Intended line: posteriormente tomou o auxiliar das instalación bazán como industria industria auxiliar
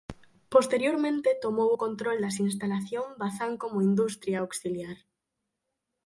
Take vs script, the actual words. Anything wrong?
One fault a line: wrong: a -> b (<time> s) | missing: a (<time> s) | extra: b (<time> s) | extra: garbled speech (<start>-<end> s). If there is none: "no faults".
wrong: auxiliar -> control (1.8 s)
missing: industria (4.4 s)